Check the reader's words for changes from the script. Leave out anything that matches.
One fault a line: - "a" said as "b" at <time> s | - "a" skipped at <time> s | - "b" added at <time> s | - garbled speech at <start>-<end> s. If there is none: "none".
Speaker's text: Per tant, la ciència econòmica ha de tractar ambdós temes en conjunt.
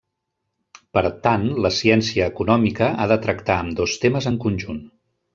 none